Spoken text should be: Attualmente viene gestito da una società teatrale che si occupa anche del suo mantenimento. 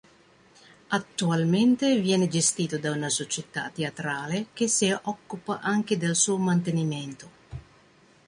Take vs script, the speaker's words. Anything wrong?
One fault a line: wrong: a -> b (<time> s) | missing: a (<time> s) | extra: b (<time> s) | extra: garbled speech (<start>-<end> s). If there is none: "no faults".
no faults